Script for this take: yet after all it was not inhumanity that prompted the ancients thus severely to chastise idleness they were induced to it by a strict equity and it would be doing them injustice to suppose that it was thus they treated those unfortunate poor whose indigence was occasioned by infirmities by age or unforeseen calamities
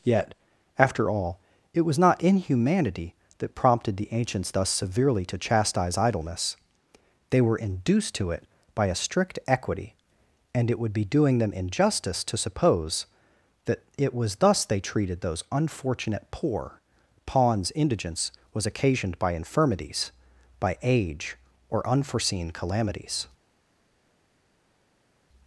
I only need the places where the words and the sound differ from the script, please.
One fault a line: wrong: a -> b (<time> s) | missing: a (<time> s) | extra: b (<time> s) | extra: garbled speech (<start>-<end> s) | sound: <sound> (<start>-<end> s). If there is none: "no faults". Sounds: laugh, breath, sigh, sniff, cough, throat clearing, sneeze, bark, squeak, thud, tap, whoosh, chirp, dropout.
wrong: whose -> pawns (17.3 s)